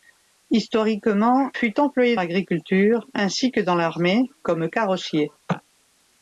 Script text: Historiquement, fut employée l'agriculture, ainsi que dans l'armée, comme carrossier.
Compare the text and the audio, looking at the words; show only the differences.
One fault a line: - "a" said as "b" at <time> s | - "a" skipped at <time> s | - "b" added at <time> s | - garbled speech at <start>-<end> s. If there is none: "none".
none